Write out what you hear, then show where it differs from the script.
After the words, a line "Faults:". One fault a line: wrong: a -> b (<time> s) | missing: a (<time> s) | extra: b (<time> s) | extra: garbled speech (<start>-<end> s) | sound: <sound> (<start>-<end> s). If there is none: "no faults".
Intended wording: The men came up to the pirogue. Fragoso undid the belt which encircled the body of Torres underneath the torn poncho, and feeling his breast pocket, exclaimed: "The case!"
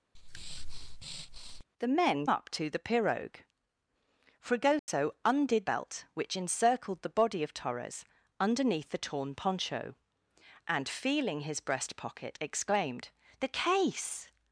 The men up to the pirogue. Fragoso undid belt which encircled the body of Torres underneath the torn poncho, and feeling his breast pocket, exclaimed: "The case!"
Faults:
sound: breath (0.1-1.6 s)
missing: came (2.3 s)
sound: dropout (4.8-4.9 s)
missing: the (5.7 s)